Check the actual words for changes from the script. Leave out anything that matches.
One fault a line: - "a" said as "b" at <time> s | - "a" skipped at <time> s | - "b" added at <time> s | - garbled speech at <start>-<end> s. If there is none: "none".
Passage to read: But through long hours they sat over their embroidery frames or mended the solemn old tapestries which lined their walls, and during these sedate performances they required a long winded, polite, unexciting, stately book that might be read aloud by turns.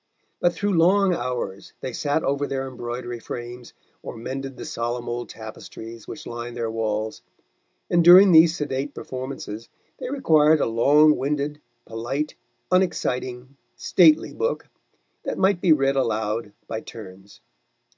none